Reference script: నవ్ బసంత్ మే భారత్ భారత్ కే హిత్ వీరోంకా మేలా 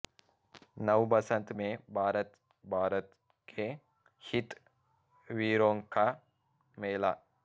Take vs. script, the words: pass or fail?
pass